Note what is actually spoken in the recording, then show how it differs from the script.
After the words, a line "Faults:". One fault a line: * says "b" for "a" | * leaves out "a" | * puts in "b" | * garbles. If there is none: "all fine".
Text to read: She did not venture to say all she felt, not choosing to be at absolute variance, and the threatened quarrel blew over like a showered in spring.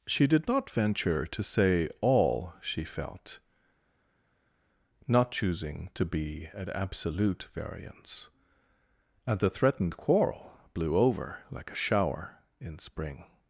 She did not venture to say all she felt, not choosing to be at absolute variance, and the threatened quarrel blew over like a shower in spring.
Faults:
* says "shower" for "showered"